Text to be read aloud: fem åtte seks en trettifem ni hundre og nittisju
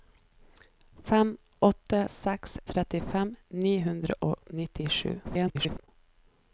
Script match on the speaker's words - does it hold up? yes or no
no